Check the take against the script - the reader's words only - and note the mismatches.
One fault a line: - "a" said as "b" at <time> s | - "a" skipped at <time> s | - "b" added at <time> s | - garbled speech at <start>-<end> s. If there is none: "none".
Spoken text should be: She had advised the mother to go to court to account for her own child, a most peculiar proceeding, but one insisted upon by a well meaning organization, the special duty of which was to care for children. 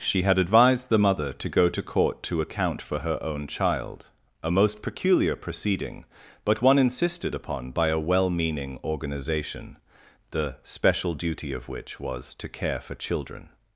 none